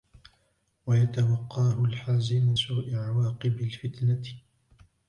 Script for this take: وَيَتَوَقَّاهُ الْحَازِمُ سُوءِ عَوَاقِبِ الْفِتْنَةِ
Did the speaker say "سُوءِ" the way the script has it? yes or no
yes